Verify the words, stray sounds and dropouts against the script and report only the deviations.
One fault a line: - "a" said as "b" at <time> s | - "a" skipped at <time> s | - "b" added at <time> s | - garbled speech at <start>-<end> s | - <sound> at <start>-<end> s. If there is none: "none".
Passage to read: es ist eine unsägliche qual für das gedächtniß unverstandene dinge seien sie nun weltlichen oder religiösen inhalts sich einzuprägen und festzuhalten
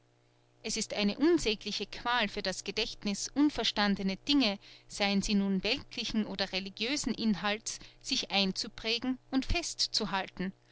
none